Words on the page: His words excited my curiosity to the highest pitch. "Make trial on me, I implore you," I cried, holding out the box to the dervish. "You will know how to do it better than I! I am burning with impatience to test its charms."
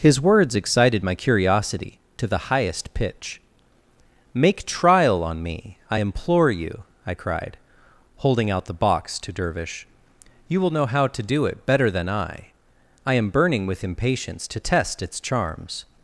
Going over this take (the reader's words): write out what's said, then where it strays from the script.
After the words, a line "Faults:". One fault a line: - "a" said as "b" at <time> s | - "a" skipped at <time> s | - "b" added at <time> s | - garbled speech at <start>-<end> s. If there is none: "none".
His words excited my curiosity to the highest pitch. "Make trial on me, I implore you," I cried, holding out the box to dervish. "You will know how to do it better than I! I am burning with impatience to test its charms."
Faults:
- "the" skipped at 9.3 s